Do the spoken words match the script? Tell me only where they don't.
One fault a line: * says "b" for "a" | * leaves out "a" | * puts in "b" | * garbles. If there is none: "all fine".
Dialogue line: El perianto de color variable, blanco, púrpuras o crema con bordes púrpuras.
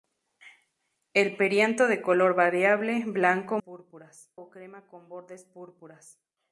all fine